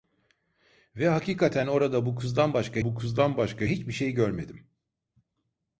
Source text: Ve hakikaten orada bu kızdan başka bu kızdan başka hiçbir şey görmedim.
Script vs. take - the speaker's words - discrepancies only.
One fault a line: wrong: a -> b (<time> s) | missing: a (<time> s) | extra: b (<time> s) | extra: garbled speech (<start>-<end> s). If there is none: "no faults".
no faults